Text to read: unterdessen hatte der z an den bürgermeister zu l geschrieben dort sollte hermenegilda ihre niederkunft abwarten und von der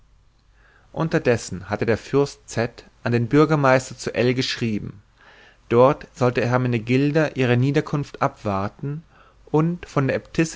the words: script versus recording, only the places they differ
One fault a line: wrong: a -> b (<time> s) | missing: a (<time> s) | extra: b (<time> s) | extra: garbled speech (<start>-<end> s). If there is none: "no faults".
extra: fürst (2.0 s)